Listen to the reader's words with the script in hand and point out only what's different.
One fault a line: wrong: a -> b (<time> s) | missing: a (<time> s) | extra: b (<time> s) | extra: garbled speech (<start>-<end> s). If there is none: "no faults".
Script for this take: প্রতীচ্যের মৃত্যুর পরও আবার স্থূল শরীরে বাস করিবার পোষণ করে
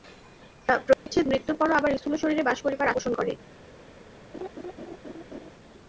no faults